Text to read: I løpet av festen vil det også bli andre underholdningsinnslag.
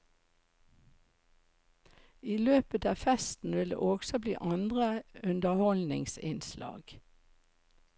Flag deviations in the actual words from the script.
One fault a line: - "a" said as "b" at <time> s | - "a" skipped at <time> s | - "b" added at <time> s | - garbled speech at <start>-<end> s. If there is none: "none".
none